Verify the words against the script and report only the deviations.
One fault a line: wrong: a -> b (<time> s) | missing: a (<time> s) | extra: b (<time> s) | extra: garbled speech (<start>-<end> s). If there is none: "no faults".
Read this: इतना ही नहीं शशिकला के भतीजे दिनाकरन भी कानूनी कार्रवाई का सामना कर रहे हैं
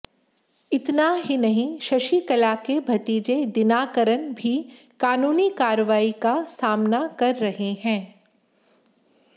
no faults